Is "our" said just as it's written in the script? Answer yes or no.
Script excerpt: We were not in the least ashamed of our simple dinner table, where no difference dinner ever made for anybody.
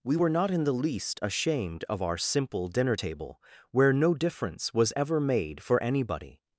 yes